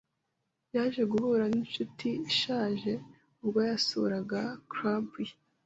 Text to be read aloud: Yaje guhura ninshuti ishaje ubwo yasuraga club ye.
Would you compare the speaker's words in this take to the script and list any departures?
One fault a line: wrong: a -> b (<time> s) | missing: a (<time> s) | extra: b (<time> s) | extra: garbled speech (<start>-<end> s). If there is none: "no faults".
no faults